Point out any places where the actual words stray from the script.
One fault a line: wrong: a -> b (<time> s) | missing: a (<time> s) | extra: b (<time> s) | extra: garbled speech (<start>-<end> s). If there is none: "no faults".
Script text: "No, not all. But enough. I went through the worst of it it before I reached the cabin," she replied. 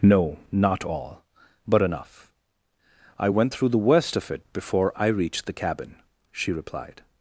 missing: it (4.4 s)